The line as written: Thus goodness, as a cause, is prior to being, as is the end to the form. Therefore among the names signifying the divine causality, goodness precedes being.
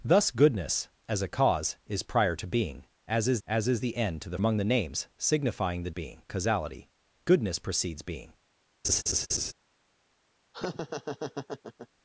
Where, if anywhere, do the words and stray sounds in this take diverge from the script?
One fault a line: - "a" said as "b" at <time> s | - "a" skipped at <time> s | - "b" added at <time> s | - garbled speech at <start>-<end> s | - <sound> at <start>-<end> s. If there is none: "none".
- "as is" added at 3.5 s
- "form Therefore" skipped at 4.4 s
- "divine" said as "being" at 5.9 s
- laugh at 8.8-9.5 s
- laugh at 10.5-11.9 s